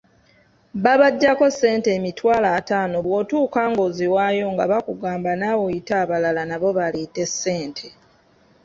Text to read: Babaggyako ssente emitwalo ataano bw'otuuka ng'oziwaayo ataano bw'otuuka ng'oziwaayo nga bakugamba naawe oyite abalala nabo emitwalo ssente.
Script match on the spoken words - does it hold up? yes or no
no